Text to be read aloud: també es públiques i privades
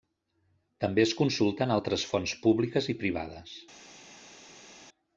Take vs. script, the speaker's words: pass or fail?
fail